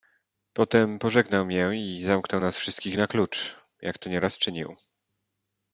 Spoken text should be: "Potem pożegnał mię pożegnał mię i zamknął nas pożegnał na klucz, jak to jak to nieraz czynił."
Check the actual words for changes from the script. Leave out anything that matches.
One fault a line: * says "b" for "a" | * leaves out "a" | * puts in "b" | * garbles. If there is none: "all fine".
* leaves out "pożegnał mię"
* says "wszystkich" for "pożegnał"
* leaves out "jak to"